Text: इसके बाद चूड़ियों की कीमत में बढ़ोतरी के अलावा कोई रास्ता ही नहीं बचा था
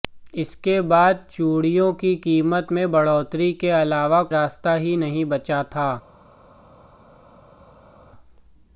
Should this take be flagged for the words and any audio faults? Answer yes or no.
yes